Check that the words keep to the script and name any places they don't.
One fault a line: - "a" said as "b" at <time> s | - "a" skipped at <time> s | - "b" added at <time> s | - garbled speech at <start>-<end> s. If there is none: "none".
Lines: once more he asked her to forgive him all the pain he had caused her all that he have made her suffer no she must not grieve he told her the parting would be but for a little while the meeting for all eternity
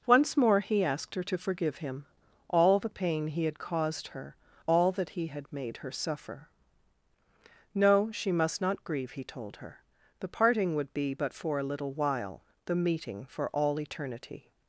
- "have" said as "had" at 5.3 s